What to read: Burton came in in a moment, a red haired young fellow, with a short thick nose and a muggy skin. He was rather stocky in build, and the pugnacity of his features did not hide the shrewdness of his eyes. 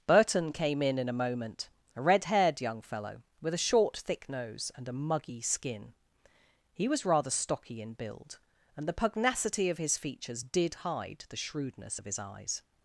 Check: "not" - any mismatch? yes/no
yes